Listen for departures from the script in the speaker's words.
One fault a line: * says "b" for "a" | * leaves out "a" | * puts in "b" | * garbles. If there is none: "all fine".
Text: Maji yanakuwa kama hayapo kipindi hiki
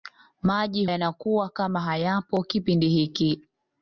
all fine